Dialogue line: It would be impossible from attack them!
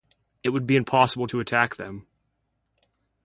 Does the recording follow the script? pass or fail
fail